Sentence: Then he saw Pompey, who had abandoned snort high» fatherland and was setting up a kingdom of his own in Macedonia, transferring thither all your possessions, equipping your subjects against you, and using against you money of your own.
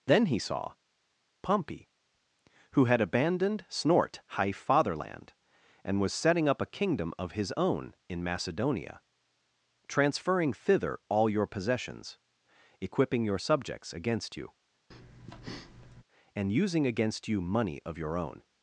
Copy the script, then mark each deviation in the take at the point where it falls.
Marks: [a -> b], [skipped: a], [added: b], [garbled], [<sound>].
Then he saw Pompey, who had abandoned snort high» fatherland and was setting up a kingdom of his own in Macedonia, transferring thither all your possessions, equipping your subjects against you, [breath] and using against you money of your own.